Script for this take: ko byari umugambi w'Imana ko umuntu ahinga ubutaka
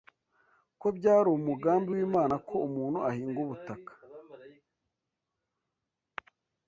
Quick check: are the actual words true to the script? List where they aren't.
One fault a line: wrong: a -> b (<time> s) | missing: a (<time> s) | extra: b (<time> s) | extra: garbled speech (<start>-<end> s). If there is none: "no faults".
no faults